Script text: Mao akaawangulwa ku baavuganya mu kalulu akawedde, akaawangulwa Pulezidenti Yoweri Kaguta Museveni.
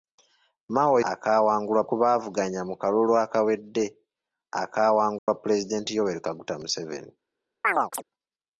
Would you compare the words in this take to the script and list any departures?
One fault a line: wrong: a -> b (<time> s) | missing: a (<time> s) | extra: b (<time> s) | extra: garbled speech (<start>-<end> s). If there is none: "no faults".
no faults